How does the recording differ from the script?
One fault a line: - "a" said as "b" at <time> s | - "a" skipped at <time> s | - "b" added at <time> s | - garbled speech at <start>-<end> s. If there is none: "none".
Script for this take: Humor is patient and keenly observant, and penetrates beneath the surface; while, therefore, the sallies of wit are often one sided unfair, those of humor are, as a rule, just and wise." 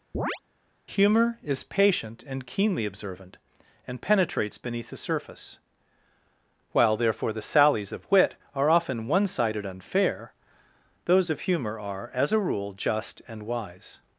none